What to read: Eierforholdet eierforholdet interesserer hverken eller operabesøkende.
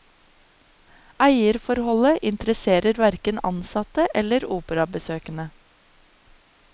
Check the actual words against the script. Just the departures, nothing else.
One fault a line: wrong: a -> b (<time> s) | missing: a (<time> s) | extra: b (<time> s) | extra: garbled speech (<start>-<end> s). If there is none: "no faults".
missing: eierforholdet (2.2 s)
extra: ansatte (3.5 s)